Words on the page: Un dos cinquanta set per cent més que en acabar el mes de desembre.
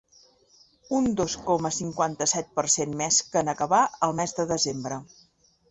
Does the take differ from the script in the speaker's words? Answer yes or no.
yes